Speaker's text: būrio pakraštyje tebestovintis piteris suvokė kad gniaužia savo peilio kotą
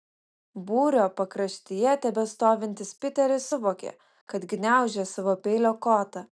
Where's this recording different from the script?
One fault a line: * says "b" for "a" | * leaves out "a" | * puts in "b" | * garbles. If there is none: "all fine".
all fine